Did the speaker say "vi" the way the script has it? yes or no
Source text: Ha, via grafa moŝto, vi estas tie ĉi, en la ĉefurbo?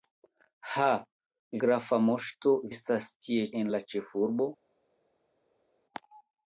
no